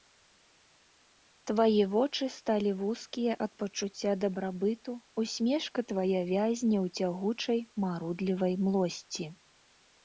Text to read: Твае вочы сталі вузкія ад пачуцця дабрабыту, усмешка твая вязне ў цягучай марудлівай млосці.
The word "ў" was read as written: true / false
true